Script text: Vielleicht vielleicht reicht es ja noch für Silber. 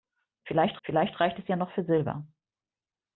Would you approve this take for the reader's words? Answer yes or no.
yes